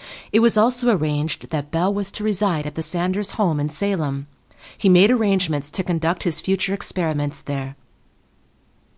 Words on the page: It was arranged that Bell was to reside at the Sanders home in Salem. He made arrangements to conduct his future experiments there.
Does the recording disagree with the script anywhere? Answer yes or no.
yes